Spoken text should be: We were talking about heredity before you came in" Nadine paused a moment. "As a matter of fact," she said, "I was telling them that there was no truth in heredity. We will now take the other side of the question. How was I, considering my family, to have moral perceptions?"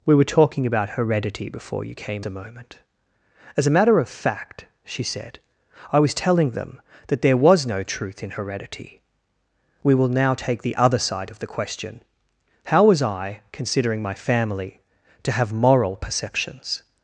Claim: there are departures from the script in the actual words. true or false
true